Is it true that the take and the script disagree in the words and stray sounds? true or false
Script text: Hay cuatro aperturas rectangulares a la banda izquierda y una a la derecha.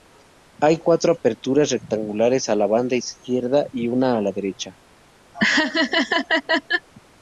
true